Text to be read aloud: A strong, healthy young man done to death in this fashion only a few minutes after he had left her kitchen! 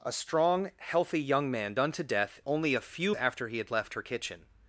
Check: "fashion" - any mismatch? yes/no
yes